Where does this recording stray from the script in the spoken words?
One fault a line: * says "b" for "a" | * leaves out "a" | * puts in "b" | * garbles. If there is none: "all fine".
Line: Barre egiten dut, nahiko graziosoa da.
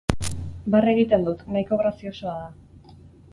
all fine